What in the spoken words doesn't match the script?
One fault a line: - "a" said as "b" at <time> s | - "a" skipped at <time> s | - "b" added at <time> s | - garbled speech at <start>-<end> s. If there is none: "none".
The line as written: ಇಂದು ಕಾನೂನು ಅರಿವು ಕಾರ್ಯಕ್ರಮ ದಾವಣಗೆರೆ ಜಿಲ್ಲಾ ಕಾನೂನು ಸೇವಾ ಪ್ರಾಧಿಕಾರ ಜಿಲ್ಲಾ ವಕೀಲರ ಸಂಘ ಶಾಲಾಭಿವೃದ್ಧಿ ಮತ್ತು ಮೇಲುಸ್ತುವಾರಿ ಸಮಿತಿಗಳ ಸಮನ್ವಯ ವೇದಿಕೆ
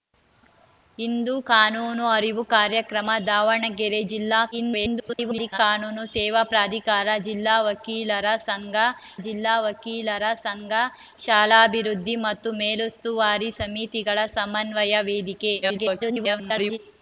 - garbled speech at 4.5-5.6 s
- "ಜಿಲ್ಲಾ ವಕೀಲರ ಸಂಘ" added at 9.2 s
- garbled speech at 15.6-16.8 s